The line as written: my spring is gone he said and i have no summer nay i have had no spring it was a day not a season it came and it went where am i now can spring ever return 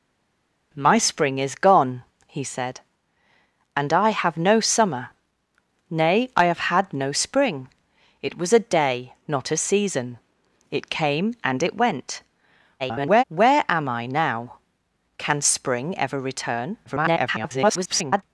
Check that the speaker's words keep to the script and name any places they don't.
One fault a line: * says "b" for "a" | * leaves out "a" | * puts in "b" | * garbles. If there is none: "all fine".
* garbles
* garbles